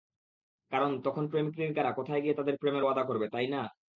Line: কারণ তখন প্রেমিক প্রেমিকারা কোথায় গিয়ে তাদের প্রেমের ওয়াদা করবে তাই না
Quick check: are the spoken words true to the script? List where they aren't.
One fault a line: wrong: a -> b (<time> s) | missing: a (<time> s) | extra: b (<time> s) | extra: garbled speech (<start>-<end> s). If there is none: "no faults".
no faults